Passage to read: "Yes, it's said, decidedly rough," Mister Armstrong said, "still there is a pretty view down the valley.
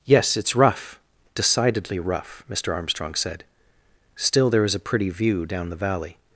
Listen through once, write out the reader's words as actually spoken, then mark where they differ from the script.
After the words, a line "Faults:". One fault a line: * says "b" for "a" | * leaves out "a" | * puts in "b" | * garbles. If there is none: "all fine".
"Yes, it's rough, decidedly rough," Mister Armstrong said, "still there is a pretty view down the valley.
Faults:
* says "rough" for "said"